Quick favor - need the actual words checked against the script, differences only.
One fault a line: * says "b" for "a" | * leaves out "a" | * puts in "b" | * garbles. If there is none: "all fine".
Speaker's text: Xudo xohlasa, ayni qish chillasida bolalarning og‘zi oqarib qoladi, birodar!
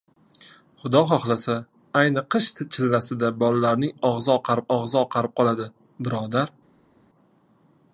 * puts in "og‘zi oqarib"